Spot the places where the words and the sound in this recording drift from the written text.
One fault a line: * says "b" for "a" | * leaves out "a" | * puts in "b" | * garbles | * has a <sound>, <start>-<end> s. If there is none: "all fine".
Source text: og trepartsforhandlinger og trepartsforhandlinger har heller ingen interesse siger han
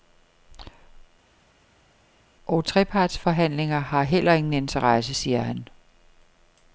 * leaves out "og trepartsforhandlinger"